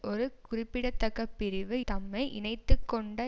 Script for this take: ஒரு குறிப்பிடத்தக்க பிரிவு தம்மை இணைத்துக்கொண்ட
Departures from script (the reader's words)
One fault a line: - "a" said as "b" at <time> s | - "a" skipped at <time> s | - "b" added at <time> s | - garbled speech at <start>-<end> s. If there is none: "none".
none